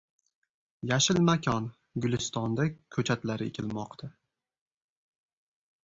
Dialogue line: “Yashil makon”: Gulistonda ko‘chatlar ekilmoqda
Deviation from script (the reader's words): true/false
false